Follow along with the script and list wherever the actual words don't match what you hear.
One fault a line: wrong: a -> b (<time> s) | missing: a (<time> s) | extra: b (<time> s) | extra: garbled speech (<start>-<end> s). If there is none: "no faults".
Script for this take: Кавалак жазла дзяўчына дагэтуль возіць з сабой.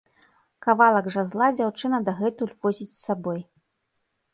no faults